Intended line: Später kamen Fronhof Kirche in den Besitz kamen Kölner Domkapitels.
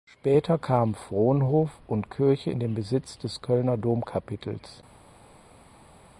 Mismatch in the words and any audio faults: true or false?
true